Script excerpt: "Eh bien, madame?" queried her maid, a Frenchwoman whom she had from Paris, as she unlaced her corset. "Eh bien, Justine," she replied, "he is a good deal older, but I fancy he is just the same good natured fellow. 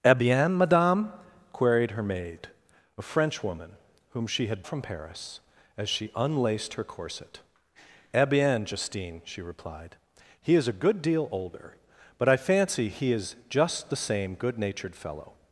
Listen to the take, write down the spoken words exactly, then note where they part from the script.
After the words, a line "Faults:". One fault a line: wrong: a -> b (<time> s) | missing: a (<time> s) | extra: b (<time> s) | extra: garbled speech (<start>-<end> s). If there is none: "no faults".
"Eh bien, madame?" queried her maid, a Frenchwoman whom she had from Paris, as she unlaced her corset. "Eh bien, Justine," she replied, "he is a good deal older, but I fancy he is just the same good natured fellow.
Faults:
no faults